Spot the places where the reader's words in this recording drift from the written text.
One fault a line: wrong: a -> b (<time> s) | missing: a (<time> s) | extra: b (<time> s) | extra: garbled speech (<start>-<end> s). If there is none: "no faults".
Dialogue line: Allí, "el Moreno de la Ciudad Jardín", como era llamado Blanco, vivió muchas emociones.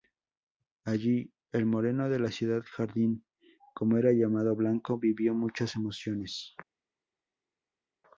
no faults